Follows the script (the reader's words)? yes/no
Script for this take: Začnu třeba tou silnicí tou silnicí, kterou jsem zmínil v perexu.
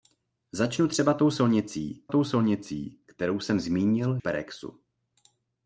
yes